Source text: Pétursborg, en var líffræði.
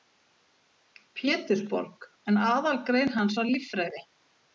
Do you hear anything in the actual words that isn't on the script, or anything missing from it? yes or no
yes